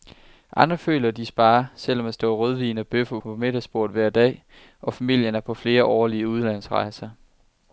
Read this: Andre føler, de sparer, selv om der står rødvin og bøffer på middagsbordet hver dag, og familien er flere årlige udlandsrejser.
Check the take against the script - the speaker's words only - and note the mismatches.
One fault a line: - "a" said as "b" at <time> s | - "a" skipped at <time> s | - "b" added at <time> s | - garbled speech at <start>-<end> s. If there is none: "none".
- "på" added at 5.4 s